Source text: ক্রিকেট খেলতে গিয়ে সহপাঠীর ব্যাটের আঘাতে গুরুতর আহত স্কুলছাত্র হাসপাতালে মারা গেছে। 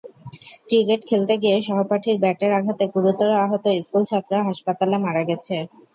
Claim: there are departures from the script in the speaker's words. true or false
false